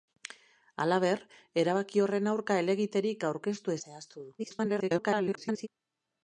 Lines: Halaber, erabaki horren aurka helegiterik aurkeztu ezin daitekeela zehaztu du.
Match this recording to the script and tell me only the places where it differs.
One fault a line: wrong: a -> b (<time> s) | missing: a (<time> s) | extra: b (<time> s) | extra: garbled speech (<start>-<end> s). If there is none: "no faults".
missing: ezin daitekeela (3.8 s)
extra: garbled speech (4.4-5.7 s)